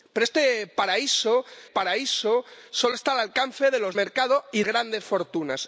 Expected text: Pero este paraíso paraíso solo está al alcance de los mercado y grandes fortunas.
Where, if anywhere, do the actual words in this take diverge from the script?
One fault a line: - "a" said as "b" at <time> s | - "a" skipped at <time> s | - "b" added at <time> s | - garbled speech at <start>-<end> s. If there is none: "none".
none